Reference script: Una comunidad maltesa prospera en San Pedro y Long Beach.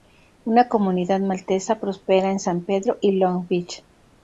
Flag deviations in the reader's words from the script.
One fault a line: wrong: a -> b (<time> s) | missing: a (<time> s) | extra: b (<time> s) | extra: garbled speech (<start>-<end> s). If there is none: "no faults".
no faults